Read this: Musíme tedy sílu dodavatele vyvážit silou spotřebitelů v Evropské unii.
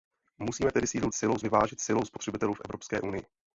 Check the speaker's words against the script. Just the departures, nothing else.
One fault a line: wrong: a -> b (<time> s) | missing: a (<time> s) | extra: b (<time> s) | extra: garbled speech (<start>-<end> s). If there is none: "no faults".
wrong: dodavatele -> silou (1.1 s)